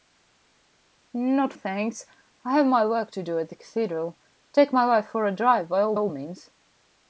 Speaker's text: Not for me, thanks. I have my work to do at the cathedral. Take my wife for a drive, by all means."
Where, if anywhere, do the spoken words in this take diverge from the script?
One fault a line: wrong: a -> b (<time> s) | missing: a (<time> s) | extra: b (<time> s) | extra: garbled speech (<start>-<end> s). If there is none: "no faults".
missing: for me (1.5 s)
extra: all (5.9 s)